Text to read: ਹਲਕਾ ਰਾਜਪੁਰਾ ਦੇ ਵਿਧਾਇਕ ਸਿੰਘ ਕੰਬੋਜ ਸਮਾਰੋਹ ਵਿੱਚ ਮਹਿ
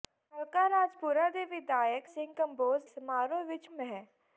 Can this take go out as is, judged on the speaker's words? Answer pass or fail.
pass